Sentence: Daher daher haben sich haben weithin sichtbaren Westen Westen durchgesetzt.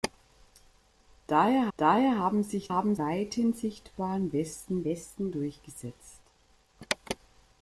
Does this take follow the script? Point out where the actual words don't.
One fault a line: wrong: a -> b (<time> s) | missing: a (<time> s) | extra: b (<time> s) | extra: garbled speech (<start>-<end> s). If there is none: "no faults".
no faults